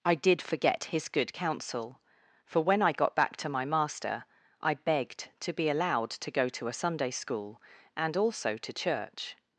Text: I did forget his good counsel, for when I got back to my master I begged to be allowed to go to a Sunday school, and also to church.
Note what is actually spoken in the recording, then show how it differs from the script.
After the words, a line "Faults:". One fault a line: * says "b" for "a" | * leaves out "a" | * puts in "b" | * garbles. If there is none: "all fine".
I did forget his good counsel, for when I got back to my master I begged to be allowed to go to a Sunday school, and also to church.
Faults:
all fine